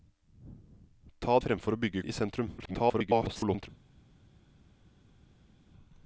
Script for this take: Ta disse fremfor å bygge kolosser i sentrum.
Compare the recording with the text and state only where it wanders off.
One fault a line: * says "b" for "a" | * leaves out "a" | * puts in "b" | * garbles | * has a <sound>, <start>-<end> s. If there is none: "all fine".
* leaves out "disse"
* leaves out "kolosser"
* garbles